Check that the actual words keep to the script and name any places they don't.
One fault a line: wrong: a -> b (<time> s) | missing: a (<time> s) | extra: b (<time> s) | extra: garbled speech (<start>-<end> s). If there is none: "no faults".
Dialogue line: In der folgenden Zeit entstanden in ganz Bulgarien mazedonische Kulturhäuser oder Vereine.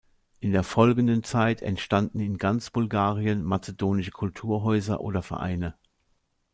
no faults